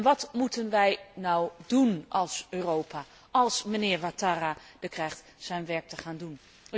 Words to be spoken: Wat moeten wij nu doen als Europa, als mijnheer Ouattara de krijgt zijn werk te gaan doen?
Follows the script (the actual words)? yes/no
yes